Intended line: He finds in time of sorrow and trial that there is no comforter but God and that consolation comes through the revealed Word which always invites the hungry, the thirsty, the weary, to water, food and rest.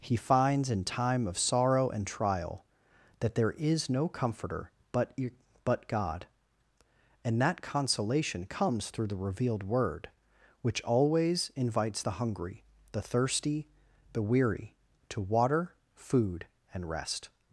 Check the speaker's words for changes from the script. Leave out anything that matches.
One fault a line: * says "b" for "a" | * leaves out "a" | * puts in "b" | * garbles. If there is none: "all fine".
* puts in "but"